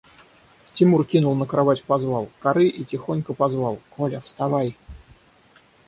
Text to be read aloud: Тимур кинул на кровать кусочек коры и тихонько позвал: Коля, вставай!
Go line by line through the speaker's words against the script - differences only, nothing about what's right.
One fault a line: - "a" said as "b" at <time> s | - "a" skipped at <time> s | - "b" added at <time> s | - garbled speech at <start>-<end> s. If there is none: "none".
- "кусочек" said as "позвал" at 1.8 s